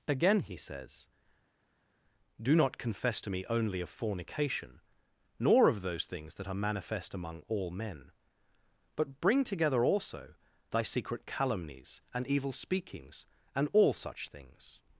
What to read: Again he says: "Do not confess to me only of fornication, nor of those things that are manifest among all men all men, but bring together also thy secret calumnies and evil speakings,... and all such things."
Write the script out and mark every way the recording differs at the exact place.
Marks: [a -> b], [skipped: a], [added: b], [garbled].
Again he says: "Do not confess to me only of fornication, nor of those things that are manifest among all men [skipped: all men,] but bring together also thy secret calumnies and evil speakings,... and all such things."